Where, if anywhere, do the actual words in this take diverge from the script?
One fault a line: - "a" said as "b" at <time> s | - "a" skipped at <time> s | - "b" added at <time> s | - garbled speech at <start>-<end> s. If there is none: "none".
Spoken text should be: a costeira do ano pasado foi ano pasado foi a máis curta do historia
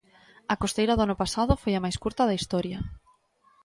- "ano pasado foi" skipped at 1.7 s
- "do" said as "da" at 2.3 s